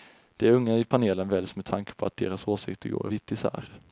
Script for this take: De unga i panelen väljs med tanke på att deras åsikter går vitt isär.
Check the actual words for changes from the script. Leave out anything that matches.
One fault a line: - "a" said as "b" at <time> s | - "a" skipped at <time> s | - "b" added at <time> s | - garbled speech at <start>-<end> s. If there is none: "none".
none